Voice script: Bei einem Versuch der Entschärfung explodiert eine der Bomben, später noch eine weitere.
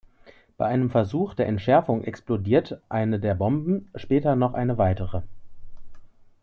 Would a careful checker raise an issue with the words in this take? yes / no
no